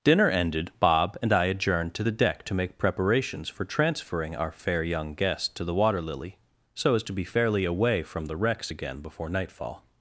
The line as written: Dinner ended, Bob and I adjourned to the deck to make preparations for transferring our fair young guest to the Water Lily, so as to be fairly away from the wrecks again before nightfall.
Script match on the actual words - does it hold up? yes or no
yes